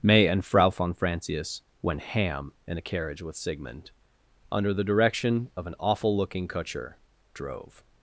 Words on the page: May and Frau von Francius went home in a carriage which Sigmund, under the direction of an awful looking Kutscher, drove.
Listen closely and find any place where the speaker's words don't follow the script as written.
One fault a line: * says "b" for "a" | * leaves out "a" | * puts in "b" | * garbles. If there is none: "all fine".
* says "ham" for "home"
* says "with" for "which"